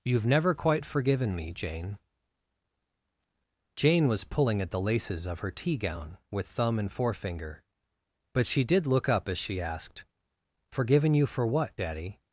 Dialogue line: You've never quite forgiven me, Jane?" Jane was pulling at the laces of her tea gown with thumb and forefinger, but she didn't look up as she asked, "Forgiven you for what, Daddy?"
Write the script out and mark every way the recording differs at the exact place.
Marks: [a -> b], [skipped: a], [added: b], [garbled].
You've never quite forgiven me, Jane?" Jane was pulling at the laces of her tea gown with thumb and forefinger, but she [didn't -> did] look up as she asked, "Forgiven you for what, Daddy?"